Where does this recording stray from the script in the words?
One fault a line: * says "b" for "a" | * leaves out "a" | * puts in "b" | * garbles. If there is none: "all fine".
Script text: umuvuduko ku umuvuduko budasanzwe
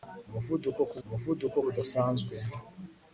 all fine